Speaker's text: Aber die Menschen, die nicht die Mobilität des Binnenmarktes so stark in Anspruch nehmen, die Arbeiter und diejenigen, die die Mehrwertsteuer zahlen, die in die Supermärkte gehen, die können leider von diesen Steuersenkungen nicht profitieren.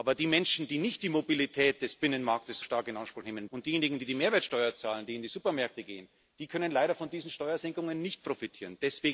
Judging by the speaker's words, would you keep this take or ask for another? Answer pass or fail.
fail